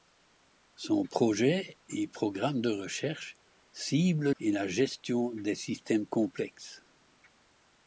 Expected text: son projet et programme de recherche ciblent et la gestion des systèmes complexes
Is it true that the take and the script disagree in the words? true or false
false